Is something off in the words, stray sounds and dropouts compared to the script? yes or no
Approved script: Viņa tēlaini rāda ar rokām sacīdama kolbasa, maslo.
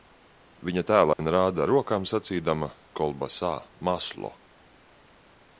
yes